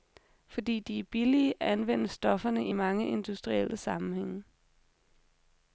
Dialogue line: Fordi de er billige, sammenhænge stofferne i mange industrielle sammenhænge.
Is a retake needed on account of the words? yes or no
yes